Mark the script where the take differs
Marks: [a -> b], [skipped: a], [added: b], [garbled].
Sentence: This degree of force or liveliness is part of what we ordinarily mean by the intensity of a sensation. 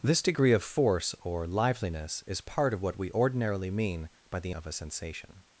This degree of force or liveliness is part of what we ordinarily mean by the [skipped: intensity] of a sensation.